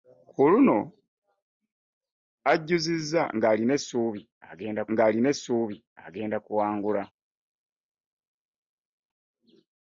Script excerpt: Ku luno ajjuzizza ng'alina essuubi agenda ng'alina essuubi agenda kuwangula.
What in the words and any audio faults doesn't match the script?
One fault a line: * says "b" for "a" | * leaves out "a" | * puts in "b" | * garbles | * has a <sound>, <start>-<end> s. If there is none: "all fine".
all fine